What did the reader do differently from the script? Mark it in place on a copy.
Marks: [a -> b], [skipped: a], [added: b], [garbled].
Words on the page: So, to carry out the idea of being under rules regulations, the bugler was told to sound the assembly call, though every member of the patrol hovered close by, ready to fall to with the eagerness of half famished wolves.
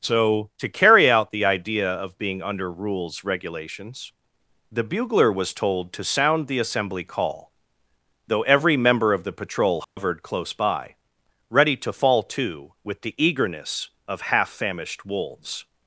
So, to carry out the idea of being under rules regulations, the bugler was told to sound the assembly call, though every member of the patrol hovered close by, ready to fall to with the eagerness of half famished wolves.